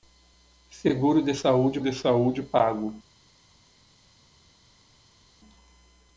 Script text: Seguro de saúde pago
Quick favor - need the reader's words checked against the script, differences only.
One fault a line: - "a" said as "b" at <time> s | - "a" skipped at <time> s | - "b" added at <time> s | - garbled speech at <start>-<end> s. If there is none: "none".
- "de saúde" added at 1.8 s